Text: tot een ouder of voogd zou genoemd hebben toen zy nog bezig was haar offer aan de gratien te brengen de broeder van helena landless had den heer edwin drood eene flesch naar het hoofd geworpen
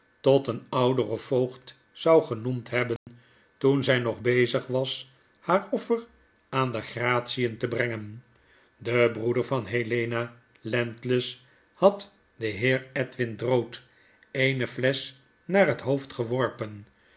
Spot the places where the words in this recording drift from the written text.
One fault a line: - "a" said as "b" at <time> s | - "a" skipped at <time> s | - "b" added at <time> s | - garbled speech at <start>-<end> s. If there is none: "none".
none